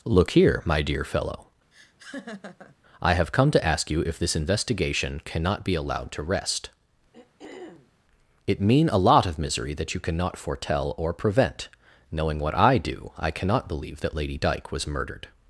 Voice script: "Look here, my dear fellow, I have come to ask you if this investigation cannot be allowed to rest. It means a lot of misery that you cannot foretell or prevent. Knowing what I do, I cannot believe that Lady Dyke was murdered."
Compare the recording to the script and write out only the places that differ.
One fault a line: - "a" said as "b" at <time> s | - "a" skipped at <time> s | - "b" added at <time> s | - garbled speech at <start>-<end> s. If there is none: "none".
- "means" said as "mean" at 8.6 s